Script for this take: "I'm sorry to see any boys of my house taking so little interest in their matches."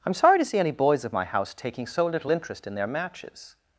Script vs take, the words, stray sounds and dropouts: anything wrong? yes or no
no